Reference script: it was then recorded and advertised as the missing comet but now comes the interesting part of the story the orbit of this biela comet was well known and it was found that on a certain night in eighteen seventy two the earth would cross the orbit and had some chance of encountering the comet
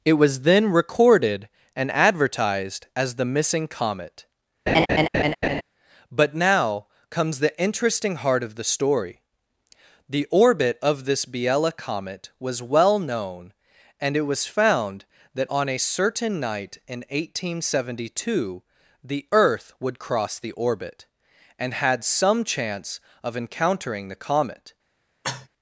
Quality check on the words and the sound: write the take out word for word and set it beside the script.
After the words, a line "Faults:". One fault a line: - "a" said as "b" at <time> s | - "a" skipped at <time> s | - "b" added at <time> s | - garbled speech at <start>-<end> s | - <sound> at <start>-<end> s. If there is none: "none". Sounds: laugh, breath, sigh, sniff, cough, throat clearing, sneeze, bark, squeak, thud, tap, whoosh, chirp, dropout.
it was then recorded and advertised as the missing comet but now comes the interesting heart of the story the orbit of this biela comet was well known and it was found that on a certain night in eighteen seventy two the earth would cross the orbit and had some chance of encountering the comet
Faults:
- laugh at 4.7-5.6 s
- "part" said as "heart" at 8.2 s
- cough at 25.2-25.5 s